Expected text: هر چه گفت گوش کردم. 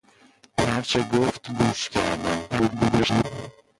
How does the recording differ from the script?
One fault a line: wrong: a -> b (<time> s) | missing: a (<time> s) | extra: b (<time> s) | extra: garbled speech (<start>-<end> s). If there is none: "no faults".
extra: garbled speech (2.5-3.2 s)